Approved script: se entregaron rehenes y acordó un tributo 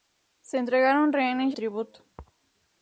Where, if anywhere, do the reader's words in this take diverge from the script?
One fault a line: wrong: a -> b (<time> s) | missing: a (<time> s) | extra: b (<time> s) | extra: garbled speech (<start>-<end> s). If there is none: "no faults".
missing: acordó un (1.6 s)